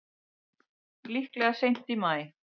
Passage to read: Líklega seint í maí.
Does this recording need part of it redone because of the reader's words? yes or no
no